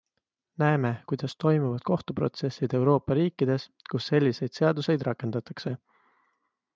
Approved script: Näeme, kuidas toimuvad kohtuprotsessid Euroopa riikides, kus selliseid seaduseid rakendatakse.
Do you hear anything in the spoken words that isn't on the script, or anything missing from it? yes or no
no